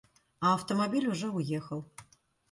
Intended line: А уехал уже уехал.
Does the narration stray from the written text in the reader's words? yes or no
yes